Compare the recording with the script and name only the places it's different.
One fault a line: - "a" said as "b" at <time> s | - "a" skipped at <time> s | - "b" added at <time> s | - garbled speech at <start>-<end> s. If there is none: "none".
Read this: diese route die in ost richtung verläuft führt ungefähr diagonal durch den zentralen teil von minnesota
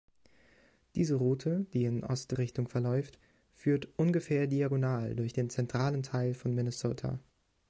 none